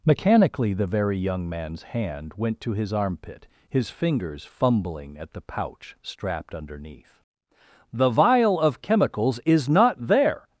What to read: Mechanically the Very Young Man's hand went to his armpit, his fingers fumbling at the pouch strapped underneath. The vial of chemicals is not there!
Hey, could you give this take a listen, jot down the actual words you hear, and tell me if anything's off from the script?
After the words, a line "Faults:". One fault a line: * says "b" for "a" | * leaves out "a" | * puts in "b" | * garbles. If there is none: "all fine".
Mechanically the Very Young Man's hand went to his armpit, his fingers fumbling at the pouch strapped underneath. The vial of chemicals is not there!
Faults:
all fine